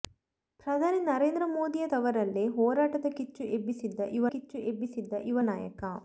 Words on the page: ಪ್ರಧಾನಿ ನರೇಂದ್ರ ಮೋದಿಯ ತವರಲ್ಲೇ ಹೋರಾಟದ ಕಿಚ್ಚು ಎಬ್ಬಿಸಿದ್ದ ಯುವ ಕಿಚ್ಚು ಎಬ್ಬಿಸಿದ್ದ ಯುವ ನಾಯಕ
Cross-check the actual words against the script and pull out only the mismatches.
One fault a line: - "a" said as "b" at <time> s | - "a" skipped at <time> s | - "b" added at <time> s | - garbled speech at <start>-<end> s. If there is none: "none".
none